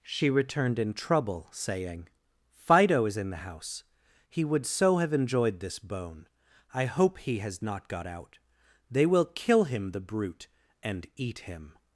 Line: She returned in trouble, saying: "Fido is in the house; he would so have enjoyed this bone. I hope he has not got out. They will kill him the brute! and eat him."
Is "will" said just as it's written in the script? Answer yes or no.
yes